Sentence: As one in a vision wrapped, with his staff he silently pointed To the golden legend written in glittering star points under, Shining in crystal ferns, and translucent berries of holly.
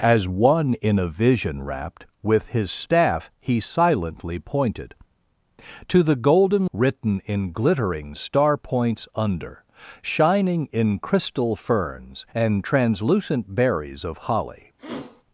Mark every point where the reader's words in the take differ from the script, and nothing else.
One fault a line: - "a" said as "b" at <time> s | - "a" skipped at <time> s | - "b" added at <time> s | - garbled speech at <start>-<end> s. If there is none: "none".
- "legend" skipped at 6.7 s